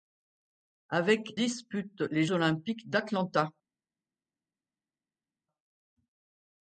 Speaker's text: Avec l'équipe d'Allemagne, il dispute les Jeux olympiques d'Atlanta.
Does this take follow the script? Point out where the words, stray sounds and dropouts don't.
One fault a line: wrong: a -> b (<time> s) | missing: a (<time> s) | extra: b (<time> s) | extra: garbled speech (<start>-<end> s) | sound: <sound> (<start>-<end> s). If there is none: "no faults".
missing: l'équipe d'Allemagne il (1.4 s)
missing: Jeux (2.3 s)